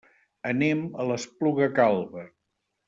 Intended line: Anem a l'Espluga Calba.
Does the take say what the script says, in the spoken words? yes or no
yes